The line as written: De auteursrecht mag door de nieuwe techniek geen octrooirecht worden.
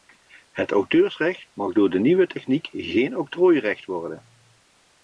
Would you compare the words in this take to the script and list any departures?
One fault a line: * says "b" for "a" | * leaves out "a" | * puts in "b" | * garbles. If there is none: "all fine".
* says "Het" for "De"